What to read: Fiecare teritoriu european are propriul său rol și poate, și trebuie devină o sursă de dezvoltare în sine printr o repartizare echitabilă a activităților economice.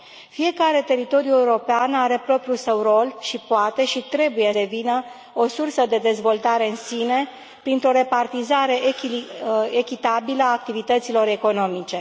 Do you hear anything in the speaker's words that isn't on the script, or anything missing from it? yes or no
no